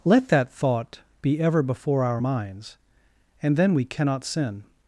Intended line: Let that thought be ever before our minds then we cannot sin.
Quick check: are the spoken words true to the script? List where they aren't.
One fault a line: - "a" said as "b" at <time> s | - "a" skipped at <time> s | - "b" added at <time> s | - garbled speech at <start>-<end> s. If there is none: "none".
- "and" added at 3.4 s